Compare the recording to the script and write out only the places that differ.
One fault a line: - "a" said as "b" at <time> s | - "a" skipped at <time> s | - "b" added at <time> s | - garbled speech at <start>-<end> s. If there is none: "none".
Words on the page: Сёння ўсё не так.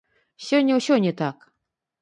none